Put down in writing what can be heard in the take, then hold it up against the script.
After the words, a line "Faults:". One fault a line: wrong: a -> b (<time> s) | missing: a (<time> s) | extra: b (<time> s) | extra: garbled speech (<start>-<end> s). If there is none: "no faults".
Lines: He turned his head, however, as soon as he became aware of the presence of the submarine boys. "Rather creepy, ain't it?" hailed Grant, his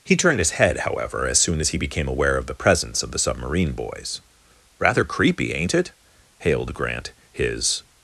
He turned his head, however, as soon as he became aware of the presence of the submarine boys. "Rather creepy, ain't it?" hailed Grant, his
Faults:
no faults